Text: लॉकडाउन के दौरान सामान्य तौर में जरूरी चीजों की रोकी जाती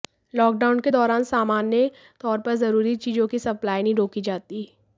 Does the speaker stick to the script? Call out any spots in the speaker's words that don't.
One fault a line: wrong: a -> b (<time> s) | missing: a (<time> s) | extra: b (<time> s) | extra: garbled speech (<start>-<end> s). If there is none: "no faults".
wrong: में -> पर (2.4 s)
extra: सप्लाई नहीं (3.4 s)